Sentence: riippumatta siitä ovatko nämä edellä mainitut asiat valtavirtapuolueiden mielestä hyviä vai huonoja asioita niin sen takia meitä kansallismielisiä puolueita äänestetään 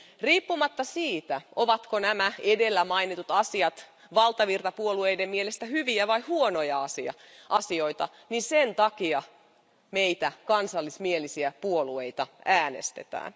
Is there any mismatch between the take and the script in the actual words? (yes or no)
no